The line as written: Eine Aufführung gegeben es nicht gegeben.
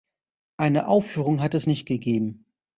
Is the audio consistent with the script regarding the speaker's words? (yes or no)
no